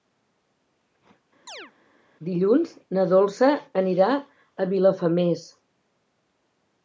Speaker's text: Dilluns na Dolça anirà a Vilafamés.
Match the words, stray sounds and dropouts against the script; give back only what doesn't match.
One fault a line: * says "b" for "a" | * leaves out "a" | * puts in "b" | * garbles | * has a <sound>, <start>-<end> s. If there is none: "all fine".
* has a chirp, 1.5-1.7 s